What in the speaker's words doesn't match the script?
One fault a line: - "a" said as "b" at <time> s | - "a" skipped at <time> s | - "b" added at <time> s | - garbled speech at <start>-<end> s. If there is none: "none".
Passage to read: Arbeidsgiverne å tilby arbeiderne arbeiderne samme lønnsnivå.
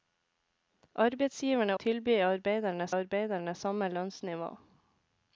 none